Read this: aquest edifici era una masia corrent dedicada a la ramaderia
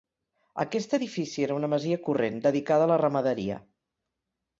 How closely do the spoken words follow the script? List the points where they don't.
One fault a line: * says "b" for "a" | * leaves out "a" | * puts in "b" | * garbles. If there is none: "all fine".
all fine